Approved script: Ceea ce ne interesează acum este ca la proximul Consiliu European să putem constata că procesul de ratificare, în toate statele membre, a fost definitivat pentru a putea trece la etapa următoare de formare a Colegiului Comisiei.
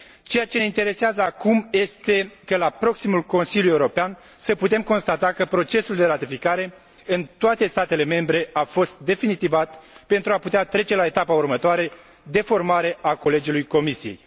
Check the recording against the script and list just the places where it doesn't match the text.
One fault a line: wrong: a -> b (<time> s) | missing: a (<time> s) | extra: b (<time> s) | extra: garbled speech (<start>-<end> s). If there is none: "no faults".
no faults